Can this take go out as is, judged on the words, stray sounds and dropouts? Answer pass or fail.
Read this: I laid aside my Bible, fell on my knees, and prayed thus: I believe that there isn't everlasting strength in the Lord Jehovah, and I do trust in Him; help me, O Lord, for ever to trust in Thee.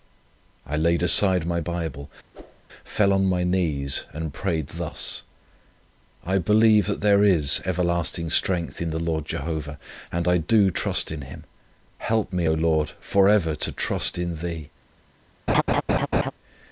fail